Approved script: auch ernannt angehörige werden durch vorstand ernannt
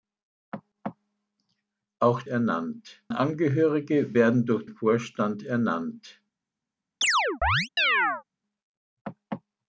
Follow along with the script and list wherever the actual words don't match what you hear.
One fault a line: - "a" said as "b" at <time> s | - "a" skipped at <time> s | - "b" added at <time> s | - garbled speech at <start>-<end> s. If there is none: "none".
none